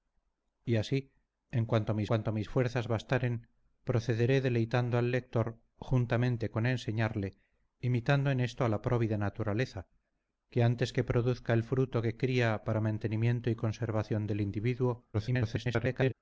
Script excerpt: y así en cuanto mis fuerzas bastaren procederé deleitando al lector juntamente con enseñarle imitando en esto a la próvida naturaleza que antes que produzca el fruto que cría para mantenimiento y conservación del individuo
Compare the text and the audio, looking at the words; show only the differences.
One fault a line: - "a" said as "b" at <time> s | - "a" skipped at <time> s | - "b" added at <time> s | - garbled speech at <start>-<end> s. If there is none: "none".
- "cuanto mis" added at 2.0 s
- garbled speech at 15.1-16.1 s